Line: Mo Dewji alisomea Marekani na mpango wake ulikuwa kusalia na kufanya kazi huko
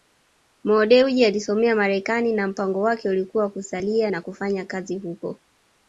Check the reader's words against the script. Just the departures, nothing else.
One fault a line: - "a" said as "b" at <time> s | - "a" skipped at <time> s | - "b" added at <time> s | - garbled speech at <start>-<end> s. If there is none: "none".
none